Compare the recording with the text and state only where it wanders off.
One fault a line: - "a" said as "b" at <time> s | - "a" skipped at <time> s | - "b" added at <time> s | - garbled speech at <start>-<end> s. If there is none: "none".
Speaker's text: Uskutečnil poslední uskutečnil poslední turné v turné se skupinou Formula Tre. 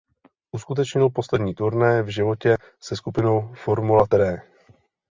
- "uskutečnil poslední" skipped at 1.6 s
- "turné" said as "životě" at 2.1 s